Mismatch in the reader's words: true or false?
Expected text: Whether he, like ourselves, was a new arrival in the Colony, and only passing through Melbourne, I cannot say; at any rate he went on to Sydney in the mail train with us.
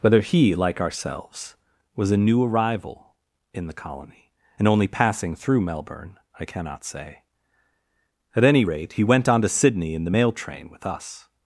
false